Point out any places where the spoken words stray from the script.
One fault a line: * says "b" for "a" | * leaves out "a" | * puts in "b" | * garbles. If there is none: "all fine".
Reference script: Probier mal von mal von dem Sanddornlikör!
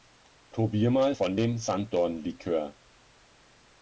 * leaves out "mal von"